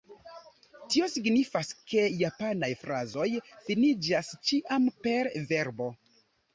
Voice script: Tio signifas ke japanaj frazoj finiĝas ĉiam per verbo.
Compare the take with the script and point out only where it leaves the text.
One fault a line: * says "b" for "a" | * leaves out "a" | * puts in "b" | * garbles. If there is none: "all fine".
all fine